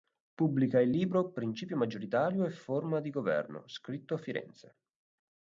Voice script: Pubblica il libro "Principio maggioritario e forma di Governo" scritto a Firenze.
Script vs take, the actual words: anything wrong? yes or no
no